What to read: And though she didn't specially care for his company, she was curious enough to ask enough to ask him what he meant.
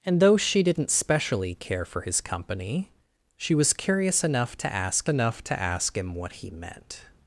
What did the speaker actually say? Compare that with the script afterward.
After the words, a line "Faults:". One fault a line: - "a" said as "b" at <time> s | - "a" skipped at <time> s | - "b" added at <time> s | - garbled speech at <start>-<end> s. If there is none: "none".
And though she didn't specially care for his company, she was curious enough to ask enough to ask him what he meant.
Faults:
none